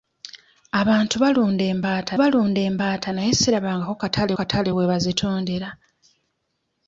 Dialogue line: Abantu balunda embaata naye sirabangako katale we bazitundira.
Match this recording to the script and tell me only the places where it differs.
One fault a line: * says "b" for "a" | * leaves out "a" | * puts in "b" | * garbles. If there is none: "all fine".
* puts in "balunda embaata"
* puts in "katale"